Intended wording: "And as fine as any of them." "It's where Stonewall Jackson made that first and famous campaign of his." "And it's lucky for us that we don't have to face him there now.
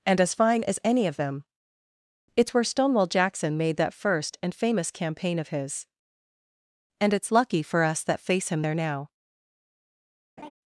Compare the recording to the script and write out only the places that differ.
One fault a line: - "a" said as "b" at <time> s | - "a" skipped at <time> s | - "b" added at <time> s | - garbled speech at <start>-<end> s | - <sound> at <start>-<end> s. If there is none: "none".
- "we don't have to" skipped at 8.2 s
- laugh at 10.4-10.5 s